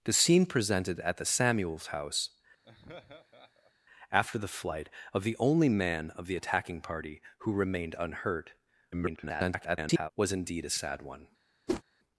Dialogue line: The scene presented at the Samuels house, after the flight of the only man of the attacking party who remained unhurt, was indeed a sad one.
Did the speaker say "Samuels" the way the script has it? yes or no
yes